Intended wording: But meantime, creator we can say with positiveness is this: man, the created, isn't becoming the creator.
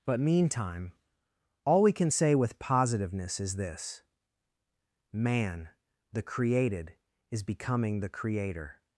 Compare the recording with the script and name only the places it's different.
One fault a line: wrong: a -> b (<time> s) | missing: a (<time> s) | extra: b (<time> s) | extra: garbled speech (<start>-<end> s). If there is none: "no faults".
wrong: creator -> all (1.6 s)
wrong: isn't -> is (7.3 s)